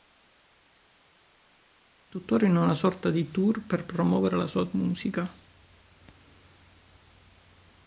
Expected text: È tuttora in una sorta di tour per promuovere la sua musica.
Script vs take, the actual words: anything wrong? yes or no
no